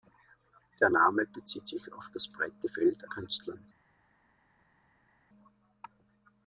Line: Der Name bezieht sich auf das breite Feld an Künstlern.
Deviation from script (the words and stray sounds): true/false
true